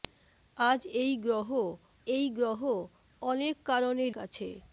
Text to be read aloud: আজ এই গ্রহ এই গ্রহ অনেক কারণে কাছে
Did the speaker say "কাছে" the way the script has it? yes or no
yes